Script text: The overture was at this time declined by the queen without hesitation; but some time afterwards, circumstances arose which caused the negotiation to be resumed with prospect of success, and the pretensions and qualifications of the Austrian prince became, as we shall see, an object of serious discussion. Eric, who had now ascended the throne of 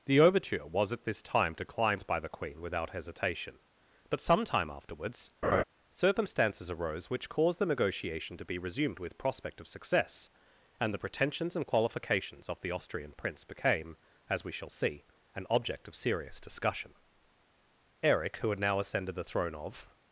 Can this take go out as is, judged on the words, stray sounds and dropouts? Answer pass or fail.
fail